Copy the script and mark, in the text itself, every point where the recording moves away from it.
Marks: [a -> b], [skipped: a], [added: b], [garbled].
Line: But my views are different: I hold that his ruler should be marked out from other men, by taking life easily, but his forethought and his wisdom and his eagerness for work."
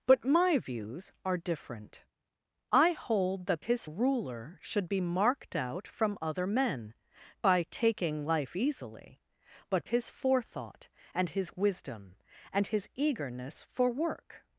But my views are different: I hold that his ruler should be marked out from other men, by taking life easily, but his forethought and his wisdom and his eagerness for work."